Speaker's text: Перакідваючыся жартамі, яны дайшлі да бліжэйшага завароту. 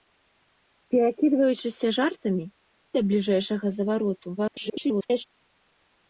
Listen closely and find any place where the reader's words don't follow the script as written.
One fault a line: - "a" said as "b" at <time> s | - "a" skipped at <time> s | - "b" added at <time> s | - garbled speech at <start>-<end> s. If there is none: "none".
- "яны дайшлі" skipped at 2.5 s
- garbled speech at 4.4-5.2 s